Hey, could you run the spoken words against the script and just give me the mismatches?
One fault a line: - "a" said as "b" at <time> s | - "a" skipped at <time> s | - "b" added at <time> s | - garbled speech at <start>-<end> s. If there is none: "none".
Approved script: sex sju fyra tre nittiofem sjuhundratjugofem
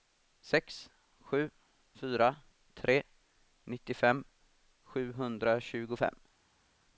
none